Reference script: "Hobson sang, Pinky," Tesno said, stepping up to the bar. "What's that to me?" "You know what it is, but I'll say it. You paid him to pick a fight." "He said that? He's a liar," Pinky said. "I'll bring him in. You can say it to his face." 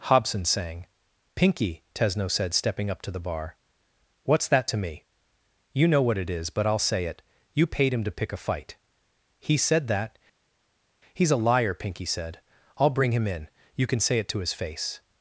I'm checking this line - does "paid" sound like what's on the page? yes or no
yes